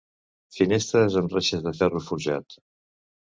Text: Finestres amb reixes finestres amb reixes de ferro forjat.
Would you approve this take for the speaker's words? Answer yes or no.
no